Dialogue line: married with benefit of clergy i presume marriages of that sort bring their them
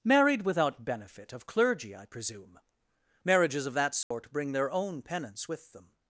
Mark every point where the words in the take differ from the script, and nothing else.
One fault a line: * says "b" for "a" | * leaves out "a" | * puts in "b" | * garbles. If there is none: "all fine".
* says "without" for "with"
* puts in "own penance with"